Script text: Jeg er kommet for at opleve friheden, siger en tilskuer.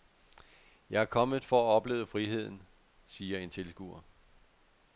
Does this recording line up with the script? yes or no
yes